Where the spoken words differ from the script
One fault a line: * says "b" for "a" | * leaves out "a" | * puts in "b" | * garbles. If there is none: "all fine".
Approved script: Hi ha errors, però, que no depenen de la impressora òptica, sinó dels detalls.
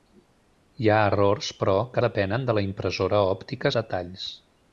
* leaves out "no"
* leaves out "sinó dels"